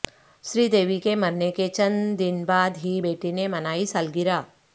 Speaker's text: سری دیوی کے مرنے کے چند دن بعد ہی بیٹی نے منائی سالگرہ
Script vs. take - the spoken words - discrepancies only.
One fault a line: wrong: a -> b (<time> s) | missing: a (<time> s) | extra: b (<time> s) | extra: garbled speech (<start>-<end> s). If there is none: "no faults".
no faults